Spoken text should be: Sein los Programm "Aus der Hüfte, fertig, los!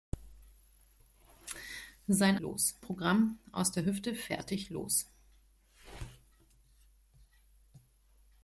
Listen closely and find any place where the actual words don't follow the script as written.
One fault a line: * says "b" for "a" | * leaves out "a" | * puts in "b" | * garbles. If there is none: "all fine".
all fine